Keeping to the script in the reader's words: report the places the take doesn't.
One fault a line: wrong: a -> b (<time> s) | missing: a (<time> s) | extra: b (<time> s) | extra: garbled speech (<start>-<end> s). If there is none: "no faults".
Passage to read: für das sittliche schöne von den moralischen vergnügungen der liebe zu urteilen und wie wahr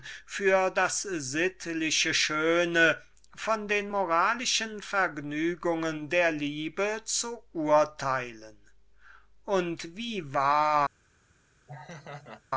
no faults